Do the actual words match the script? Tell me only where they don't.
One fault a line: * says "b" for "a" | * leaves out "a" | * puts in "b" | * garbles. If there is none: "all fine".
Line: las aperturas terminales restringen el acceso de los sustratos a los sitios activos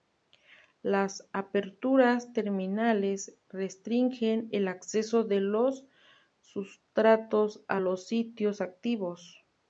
all fine